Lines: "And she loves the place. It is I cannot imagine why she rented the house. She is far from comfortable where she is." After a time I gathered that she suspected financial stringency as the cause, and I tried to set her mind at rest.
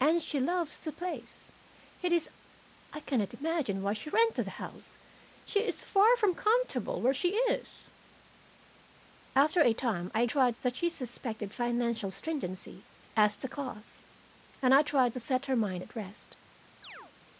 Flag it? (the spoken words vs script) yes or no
yes